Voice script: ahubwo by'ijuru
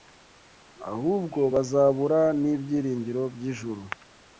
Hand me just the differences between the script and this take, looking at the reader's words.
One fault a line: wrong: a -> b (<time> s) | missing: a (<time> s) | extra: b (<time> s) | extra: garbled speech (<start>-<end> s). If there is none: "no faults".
extra: bazabura n'ibyiringiro (1.5 s)